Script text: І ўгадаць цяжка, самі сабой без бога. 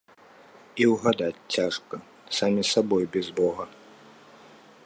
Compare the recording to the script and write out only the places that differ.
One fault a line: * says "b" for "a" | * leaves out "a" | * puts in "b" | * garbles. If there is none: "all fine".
all fine